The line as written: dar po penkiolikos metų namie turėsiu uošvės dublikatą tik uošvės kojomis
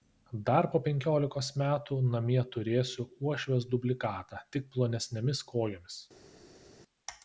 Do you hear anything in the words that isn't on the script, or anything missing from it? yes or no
yes